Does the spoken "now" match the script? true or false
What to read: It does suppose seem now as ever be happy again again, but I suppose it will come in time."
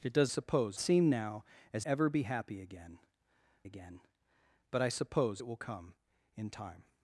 true